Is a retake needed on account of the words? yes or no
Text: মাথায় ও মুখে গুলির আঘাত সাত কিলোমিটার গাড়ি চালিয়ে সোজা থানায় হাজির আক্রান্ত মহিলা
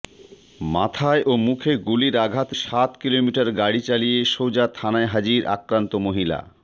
no